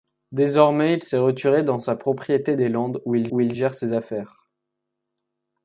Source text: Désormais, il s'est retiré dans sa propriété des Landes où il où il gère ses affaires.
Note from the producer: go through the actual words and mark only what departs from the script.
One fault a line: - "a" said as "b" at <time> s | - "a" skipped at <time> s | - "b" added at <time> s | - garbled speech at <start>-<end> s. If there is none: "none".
none